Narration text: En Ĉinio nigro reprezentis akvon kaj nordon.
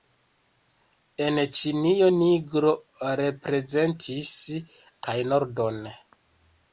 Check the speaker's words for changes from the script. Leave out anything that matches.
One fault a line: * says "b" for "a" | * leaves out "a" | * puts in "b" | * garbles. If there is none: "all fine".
* leaves out "akvon"